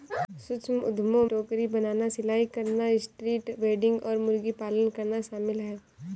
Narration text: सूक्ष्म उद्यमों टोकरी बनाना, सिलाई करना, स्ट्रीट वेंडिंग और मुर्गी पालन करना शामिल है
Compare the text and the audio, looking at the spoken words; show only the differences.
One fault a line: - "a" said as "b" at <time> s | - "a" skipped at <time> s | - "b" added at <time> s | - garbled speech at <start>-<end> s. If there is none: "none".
none